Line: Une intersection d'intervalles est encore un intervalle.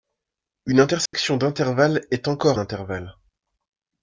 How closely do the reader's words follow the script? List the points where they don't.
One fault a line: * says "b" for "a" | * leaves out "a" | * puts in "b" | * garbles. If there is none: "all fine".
* leaves out "un"